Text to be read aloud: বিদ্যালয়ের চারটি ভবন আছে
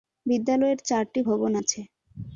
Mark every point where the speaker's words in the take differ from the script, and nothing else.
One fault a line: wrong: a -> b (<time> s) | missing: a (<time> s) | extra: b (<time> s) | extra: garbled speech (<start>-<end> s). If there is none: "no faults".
no faults